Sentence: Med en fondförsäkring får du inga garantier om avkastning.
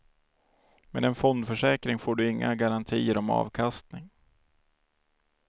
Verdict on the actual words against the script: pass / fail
pass